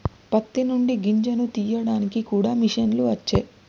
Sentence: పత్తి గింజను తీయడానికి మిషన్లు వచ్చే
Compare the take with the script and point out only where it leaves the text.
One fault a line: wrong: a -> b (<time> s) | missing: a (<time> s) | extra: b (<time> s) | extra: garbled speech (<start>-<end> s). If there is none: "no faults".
extra: నుండి (0.6 s)
extra: కూడా (2.3 s)